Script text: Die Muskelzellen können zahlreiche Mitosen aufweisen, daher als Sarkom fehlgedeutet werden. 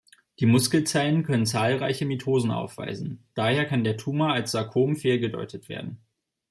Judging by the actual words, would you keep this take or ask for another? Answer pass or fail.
fail